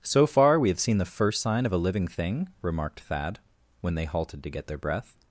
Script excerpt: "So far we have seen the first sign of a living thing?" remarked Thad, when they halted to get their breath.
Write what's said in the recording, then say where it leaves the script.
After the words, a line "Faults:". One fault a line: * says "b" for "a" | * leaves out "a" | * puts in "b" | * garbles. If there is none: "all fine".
"So far we have seen the first sign of a living thing?" remarked Thad, when they halted to get their breath.
Faults:
all fine